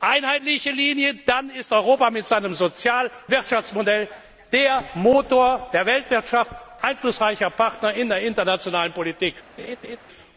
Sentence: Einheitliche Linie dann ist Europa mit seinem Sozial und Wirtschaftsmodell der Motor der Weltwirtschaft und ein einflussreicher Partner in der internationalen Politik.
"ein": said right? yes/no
no